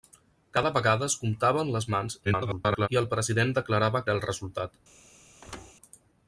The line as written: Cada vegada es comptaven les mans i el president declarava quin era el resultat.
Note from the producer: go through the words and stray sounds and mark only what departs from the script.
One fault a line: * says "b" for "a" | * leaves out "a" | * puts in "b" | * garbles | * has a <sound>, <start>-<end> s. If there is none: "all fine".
* garbles
* leaves out "quin"
* has a thud, 5.4-5.7 s